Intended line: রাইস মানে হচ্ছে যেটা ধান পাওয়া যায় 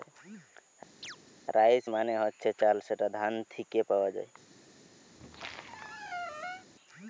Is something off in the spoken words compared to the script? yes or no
yes